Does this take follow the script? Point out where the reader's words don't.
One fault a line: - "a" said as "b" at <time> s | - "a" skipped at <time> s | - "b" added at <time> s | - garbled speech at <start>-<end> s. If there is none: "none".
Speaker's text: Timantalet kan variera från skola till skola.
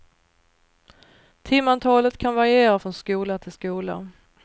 none